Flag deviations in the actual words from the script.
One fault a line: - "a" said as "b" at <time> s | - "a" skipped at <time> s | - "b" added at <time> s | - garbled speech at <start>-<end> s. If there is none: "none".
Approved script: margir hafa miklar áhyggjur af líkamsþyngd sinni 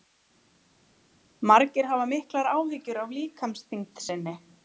none